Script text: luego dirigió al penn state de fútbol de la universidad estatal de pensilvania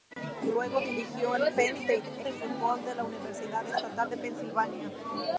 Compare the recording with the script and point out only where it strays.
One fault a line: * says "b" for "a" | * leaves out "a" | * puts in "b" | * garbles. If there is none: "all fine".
all fine